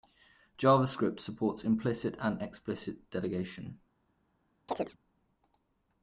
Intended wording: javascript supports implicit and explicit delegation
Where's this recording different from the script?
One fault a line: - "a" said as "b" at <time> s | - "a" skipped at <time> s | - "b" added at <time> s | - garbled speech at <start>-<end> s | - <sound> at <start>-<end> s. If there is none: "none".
- chirp at 4.7-5.0 s